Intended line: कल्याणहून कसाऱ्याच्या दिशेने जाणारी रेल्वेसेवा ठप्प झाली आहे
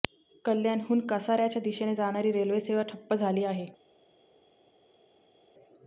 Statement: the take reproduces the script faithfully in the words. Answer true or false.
true